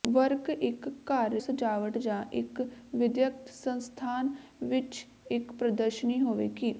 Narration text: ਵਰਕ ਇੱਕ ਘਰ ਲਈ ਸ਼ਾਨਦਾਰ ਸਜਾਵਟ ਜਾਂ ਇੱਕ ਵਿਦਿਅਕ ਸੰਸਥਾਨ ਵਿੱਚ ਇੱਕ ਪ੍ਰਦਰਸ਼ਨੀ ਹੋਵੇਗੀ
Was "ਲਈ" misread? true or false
true